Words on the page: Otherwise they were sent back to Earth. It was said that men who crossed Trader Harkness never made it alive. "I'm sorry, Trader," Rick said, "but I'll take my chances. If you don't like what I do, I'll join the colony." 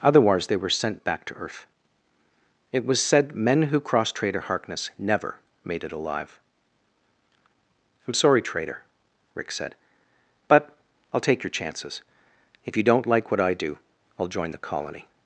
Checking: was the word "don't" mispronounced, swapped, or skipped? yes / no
no